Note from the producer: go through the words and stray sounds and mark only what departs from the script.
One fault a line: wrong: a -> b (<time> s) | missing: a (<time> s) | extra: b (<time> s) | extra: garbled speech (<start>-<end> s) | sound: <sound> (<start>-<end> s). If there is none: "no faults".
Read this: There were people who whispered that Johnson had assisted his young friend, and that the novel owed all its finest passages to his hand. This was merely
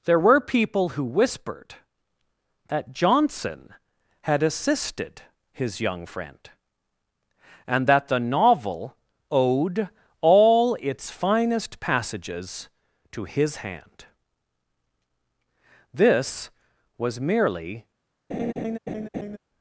sound: laugh (18.3-19.4 s)